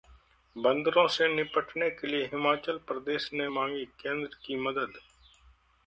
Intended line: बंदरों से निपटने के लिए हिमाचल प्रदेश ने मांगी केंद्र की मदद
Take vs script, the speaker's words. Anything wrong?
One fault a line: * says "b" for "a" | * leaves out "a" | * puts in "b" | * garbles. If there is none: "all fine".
all fine